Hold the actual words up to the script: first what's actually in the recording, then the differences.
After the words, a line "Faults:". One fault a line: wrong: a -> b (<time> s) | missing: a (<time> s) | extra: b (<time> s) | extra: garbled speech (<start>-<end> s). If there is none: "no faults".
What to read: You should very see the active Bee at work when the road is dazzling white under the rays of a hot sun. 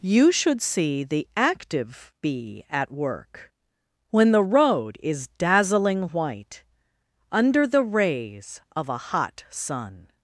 You should see the active Bee at work when the road is dazzling white under the rays of a hot sun.
Faults:
missing: very (0.6 s)